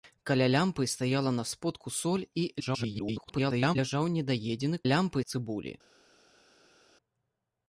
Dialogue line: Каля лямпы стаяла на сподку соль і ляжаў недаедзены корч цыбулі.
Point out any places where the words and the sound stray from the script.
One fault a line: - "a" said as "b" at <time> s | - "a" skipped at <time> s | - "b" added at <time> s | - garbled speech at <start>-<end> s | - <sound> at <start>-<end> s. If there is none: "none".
- garbled speech at 2.6-3.8 s
- "корч" said as "лямпы" at 4.9 s